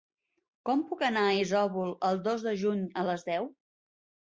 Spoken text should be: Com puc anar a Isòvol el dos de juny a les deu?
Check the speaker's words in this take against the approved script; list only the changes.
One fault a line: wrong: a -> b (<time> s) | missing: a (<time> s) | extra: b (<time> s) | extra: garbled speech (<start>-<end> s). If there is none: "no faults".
no faults